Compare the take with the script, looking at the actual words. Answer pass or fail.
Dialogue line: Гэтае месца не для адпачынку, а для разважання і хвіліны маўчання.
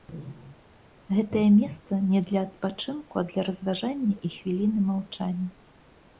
pass